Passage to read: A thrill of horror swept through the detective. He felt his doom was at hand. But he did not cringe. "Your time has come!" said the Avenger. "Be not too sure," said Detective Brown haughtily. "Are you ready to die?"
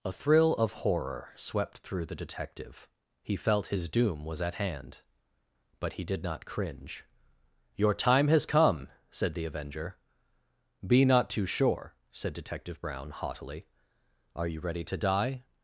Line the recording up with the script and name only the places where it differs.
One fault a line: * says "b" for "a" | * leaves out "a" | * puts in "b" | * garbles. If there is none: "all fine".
all fine